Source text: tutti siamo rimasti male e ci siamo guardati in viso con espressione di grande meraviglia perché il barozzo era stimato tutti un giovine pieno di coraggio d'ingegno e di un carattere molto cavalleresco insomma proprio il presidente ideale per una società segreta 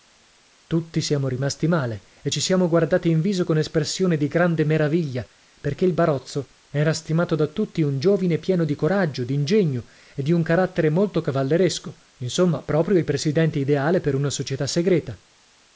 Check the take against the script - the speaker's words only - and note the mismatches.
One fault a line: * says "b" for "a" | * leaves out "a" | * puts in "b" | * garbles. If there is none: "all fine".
* puts in "da"